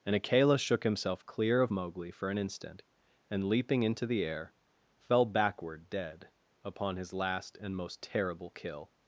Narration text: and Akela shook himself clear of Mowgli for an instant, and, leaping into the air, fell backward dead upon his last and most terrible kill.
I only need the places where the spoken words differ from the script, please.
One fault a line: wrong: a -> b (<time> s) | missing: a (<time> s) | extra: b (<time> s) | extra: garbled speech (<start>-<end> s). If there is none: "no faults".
no faults